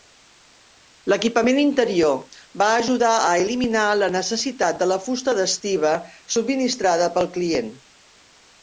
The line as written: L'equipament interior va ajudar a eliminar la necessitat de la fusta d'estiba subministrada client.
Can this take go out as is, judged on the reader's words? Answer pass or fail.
fail